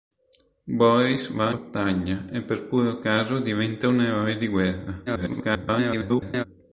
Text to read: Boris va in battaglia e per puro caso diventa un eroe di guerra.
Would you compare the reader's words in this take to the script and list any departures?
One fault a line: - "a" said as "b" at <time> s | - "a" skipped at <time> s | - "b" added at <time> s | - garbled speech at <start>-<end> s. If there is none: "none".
- "in" skipped at 1.5 s
- garbled speech at 5.1-6.4 s